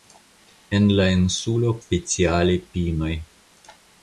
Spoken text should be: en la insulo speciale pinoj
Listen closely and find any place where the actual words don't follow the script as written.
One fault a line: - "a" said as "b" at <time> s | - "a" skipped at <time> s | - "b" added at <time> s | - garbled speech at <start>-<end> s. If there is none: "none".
none